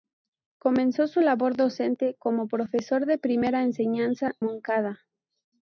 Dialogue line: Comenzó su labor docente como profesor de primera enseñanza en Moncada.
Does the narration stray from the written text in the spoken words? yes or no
yes